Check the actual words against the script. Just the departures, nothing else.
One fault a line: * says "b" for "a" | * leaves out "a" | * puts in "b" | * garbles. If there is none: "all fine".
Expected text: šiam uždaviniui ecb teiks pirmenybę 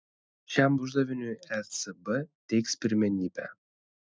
all fine